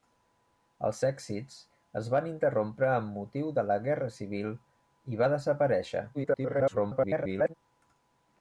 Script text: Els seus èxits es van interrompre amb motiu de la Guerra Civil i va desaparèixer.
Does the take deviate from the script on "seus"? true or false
true